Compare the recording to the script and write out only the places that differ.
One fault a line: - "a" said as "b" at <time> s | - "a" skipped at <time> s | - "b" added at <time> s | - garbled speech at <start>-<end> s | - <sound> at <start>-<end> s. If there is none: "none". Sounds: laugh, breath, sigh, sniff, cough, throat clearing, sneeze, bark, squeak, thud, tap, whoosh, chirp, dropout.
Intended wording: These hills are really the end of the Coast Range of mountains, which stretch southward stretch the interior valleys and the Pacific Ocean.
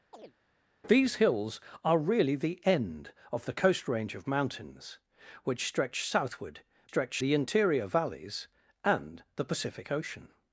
- chirp at 0.1-0.3 s